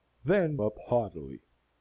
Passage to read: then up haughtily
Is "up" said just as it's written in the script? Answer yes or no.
yes